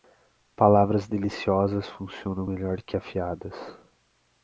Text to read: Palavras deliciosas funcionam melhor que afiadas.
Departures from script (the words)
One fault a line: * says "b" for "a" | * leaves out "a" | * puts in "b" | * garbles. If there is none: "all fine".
all fine